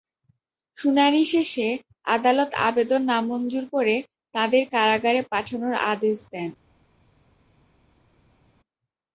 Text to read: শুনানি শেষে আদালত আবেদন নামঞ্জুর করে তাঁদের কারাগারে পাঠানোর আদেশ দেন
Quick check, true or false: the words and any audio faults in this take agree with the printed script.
true